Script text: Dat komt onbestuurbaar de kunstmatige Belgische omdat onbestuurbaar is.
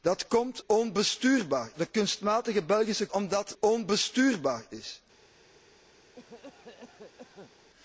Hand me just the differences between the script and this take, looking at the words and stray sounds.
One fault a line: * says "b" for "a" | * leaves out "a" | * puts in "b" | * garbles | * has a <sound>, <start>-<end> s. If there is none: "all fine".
* has a cough, 6.2-7.5 s